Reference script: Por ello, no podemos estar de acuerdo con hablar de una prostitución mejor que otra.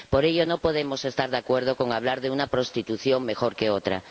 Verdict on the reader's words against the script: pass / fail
pass